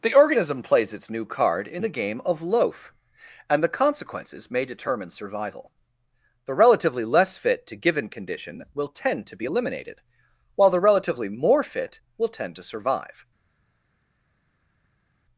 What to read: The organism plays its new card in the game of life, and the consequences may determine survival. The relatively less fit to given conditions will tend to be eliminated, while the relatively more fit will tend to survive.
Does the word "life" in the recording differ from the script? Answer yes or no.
yes